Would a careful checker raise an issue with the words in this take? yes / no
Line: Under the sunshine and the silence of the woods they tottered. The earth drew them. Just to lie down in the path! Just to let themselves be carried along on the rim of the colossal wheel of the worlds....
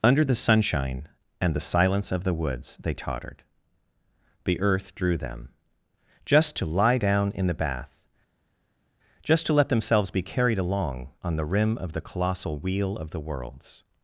yes